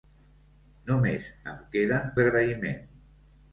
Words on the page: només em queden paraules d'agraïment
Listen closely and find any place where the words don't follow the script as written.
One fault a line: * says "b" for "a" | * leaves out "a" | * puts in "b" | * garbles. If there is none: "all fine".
* leaves out "paraules"